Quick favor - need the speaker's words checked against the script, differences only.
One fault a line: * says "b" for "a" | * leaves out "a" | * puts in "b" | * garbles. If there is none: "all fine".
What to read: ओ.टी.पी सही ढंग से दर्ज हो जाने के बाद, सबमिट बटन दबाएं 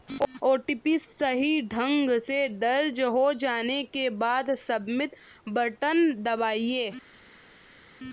all fine